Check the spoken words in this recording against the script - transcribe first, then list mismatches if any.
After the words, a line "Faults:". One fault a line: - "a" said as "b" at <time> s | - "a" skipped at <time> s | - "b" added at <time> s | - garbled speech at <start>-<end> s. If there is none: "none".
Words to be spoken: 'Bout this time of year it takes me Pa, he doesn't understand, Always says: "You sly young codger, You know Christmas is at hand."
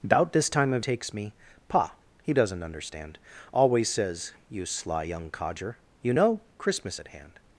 'Bout this time of takes me Pa, he doesn't understand, Always says: "You sly young codger, You know Christmas at hand."
Faults:
- "year it" skipped at 0.8 s
- "is" skipped at 7.0 s